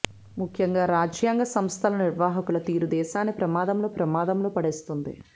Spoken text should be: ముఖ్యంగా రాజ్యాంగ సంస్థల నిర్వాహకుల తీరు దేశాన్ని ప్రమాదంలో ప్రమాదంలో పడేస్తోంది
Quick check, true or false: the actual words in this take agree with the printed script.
true